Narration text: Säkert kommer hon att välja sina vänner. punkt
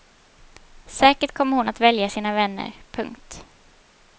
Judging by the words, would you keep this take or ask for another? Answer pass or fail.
pass